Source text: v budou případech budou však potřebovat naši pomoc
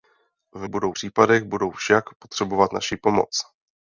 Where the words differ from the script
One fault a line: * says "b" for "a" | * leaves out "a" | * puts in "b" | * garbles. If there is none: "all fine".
all fine